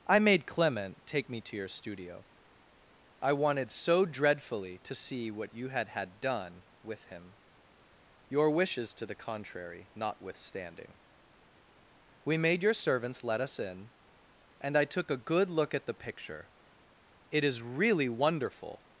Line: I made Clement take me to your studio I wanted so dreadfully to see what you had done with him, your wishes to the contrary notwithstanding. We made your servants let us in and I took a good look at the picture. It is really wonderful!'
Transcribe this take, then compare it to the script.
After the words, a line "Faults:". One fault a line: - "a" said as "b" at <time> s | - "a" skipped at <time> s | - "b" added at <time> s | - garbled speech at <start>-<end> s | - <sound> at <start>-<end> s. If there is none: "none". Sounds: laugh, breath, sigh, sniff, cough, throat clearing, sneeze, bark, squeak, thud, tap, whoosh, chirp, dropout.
I made Clement take me to your studio I wanted so dreadfully to see what you had had done with him, your wishes to the contrary notwithstanding. We made your servants let us in and I took a good look at the picture. It is really wonderful!'
Faults:
- "had" added at 5.9 s